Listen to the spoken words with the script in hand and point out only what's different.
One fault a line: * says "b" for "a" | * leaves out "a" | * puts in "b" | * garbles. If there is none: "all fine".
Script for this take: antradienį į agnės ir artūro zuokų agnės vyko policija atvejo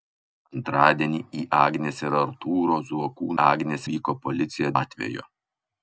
all fine